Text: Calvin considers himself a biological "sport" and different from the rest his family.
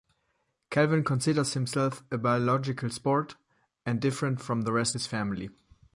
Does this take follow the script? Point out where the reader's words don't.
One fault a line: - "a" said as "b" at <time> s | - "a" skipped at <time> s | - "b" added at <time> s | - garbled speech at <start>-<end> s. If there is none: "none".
none